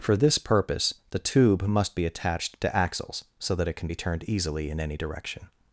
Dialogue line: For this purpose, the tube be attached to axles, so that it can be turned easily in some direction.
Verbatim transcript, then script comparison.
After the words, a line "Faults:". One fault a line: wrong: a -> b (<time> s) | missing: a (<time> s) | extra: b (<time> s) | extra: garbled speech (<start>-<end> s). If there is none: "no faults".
For this purpose, the tube must be attached to axles, so that it can be turned easily in any direction.
Faults:
extra: must (1.6 s)
wrong: some -> any (4.8 s)